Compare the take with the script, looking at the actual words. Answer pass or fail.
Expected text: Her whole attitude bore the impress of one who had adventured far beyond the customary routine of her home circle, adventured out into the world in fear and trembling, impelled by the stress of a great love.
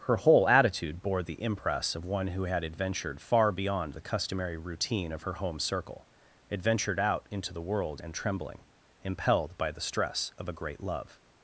fail